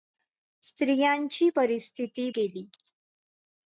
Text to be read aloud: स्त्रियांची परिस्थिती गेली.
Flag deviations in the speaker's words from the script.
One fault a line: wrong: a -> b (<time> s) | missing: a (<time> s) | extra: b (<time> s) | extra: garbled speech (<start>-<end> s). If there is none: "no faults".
no faults